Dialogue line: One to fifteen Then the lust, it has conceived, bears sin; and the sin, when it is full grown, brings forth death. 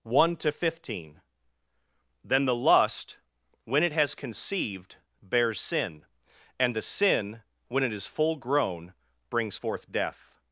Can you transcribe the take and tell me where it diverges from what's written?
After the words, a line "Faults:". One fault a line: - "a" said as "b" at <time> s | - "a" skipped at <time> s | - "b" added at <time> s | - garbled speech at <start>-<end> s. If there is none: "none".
One to fifteen Then the lust, when it has conceived, bears sin; and the sin, when it is full grown, brings forth death.
Faults:
- "when" added at 3.6 s